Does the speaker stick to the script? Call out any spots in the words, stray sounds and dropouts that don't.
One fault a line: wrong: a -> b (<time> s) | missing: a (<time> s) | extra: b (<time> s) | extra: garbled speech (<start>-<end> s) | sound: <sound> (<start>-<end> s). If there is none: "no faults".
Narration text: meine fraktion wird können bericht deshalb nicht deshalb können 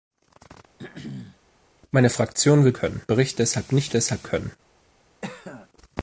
sound: throat clearing (0.8-1.4 s)
sound: cough (5.2-5.7 s)